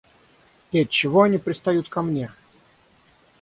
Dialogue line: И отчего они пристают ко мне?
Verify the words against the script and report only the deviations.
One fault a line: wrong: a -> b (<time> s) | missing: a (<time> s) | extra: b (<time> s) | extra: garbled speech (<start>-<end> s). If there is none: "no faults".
no faults